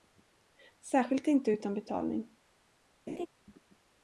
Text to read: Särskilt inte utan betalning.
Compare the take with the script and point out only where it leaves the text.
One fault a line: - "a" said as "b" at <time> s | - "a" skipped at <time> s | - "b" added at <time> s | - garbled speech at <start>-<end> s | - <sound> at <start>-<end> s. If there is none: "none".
- laugh at 3.1-3.3 s